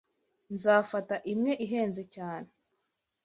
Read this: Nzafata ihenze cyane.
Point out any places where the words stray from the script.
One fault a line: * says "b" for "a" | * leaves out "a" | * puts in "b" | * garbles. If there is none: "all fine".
* puts in "imwe"